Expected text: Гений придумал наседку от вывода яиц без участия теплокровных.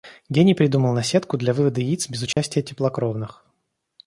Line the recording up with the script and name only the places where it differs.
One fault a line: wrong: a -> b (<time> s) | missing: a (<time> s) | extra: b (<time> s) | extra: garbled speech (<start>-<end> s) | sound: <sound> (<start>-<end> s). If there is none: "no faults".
wrong: от -> для (1.4 s)
sound: dropout (2.3-2.4 s)